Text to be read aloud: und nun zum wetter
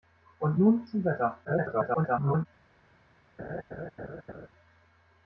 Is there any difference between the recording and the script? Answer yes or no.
yes